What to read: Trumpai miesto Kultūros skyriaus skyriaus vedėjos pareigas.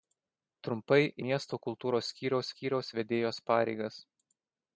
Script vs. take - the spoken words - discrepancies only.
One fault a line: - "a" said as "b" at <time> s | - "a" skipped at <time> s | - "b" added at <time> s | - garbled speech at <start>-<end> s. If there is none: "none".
none